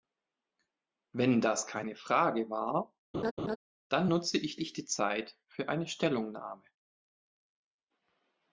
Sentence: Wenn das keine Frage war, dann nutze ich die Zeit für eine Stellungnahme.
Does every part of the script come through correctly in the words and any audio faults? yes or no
no